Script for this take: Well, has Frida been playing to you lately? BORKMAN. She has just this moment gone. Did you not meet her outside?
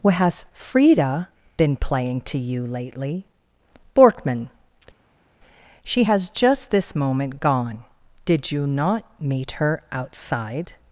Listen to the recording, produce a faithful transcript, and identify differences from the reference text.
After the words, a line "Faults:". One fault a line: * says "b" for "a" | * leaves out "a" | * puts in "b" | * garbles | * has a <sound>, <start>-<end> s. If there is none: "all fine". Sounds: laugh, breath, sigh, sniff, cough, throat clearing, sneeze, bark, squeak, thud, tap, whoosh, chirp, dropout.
What, has Frida been playing to you lately? BORKMAN. She has just this moment gone. Did you not meet her outside?
Faults:
* says "What" for "Well"